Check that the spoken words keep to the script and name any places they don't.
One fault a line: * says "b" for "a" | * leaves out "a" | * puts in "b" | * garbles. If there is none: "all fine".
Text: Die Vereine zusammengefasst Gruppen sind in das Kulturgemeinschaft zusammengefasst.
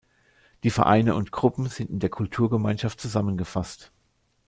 * says "und" for "zusammengefasst"
* says "der" for "das"